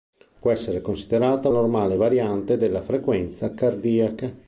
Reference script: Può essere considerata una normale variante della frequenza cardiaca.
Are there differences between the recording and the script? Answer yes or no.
yes